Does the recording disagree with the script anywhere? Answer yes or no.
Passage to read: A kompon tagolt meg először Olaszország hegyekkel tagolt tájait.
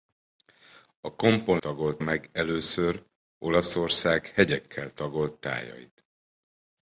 no